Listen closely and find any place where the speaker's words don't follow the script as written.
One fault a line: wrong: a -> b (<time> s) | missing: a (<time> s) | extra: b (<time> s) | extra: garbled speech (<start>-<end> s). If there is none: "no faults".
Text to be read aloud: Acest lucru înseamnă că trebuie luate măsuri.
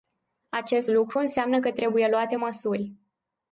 no faults